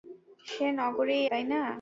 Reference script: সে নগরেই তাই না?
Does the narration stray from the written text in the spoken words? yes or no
no